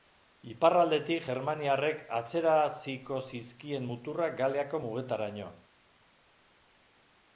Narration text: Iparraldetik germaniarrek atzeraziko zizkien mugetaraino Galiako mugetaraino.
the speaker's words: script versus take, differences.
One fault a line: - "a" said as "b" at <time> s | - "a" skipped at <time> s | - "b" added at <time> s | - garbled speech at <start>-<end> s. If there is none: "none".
- "mugetaraino" said as "muturrak" at 3.9 s